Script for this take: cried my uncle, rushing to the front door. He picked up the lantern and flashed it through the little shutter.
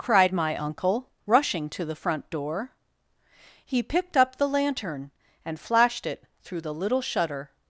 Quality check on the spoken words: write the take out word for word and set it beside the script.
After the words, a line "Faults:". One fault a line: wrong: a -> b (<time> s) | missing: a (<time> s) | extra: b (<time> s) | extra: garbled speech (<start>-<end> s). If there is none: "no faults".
cried my uncle, rushing to the front door. He picked up the lantern and flashed it through the little shutter.
Faults:
no faults